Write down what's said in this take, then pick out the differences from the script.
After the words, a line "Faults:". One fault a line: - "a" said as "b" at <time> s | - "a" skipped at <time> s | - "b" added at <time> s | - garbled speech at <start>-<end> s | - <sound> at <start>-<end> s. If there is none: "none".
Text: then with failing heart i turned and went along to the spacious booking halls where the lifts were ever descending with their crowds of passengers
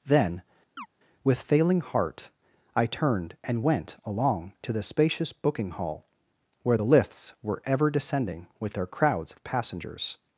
then with failing heart i turned and went along to the spacious booking hall where the lifts were ever descending with their crowds of passengers
Faults:
- chirp at 0.8-0.9 s
- "halls" said as "hall" at 5.7 s